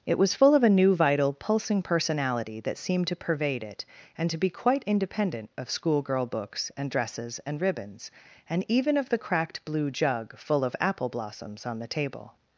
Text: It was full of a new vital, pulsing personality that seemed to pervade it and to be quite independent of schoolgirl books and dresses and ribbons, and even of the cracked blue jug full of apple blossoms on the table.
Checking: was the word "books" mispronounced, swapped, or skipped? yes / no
no